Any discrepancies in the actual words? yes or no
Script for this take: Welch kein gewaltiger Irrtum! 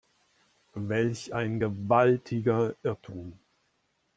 yes